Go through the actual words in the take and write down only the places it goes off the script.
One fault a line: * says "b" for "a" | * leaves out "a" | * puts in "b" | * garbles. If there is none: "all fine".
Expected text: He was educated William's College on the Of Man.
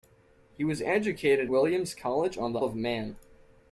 all fine